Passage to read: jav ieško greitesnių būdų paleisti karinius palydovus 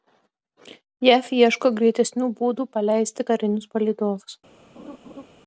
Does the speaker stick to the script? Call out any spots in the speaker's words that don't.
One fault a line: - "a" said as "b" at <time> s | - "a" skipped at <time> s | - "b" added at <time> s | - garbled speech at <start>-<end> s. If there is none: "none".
none